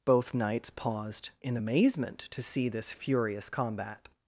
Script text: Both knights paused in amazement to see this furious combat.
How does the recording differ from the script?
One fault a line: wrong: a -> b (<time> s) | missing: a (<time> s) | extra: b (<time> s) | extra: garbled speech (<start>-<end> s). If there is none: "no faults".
no faults